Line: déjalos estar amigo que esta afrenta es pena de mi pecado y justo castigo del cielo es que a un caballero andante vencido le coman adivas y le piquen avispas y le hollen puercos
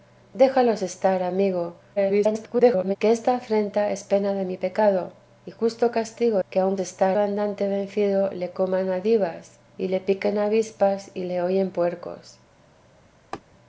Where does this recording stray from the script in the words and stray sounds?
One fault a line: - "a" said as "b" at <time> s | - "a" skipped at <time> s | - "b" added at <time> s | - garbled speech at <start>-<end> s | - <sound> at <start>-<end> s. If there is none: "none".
- garbled speech at 2.0-3.0 s
- "del cielo es" skipped at 6.4 s
- "caballero" said as "estar" at 6.8 s
- laugh at 13.3-13.4 s